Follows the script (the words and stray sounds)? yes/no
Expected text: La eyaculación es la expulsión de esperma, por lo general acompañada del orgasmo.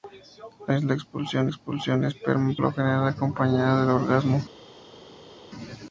no